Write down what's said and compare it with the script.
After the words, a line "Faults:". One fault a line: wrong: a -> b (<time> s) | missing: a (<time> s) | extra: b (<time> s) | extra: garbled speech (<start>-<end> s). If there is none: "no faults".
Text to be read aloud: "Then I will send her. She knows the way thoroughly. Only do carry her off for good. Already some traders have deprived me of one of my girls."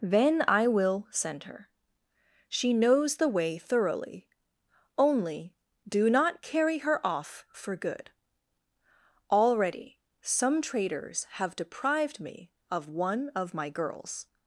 "Then I will send her. She knows the way thoroughly. Only do not carry her off for good. Already some traders have deprived me of one of my girls."
Faults:
extra: not (6.1 s)